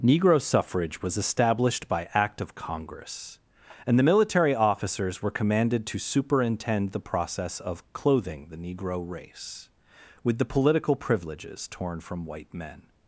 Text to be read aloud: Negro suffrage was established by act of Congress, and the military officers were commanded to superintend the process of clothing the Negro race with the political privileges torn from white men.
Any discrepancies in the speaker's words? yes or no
no